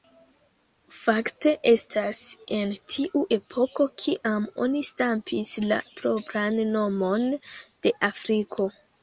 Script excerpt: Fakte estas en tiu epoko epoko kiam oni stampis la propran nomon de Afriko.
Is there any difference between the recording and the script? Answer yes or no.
yes